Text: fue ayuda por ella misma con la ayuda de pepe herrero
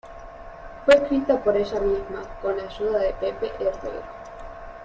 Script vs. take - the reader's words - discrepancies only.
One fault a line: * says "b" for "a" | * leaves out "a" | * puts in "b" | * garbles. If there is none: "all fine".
* says "escrita" for "ayuda"